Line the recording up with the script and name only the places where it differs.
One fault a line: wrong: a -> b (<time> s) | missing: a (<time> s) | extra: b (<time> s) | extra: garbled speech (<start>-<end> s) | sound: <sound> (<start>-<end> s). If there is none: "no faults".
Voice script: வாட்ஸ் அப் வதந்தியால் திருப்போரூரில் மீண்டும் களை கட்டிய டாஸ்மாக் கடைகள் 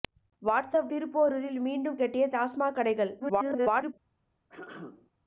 missing: வதந்தியால் (0.9 s)
missing: களை (2.0 s)
extra: garbled speech (3.2-3.9 s)
sound: throat clearing (4.5-5.1 s)